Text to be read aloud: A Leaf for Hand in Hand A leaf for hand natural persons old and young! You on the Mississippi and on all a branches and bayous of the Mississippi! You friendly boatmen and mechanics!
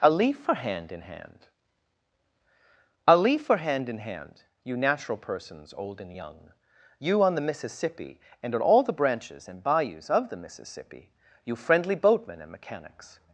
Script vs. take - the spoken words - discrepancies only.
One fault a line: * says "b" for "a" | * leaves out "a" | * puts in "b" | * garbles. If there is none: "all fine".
* puts in "in hand You"
* says "the" for "a"